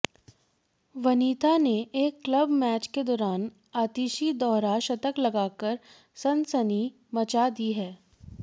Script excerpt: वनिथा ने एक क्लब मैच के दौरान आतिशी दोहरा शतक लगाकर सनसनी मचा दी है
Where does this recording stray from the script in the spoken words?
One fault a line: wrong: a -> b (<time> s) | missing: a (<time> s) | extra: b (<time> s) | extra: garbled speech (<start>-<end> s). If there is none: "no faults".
no faults